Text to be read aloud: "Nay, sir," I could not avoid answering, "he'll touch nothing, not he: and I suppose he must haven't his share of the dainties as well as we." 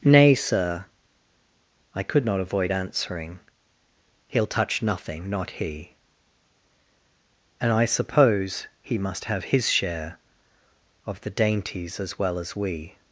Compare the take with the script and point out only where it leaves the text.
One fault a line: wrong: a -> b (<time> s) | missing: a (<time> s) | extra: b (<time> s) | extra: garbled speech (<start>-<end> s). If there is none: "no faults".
wrong: haven't -> have (9.3 s)